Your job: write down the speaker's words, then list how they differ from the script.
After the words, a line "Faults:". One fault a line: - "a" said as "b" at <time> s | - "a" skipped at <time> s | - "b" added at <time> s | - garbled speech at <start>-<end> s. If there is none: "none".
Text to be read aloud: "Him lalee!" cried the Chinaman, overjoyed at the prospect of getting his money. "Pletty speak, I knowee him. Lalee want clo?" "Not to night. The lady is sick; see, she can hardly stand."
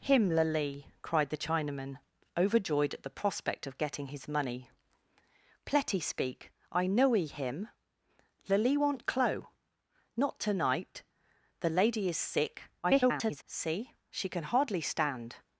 "Him lalee!" cried the Chinaman, overjoyed at the prospect of getting his money. "Pletty speak, I knowee him. Lalee want clo?" "Not to night. The lady is sick; [garbled] see, she can hardly stand."
Faults:
- garbled speech at 12.8-13.4 s